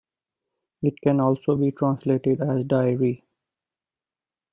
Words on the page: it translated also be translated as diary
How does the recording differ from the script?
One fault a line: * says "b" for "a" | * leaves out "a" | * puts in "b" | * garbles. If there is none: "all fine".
* says "can" for "translated"